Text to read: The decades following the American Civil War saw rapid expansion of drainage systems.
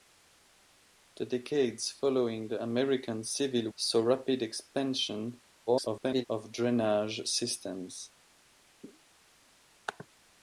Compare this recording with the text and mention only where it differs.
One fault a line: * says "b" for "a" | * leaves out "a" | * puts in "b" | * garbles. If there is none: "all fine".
* leaves out "War"
* garbles